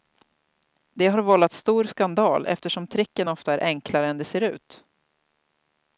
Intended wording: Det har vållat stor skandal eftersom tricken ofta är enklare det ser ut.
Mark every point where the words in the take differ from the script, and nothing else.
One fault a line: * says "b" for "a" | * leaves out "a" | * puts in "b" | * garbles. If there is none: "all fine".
* puts in "än"